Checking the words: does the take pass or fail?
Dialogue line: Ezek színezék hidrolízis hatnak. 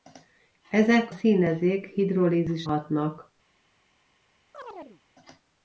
pass